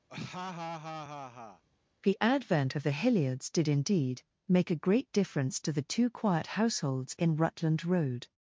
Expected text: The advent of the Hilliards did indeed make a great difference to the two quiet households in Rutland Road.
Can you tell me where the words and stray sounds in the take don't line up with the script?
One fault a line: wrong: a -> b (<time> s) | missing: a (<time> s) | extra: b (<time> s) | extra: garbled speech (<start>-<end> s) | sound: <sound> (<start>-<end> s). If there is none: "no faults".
sound: laugh (0.1-1.6 s)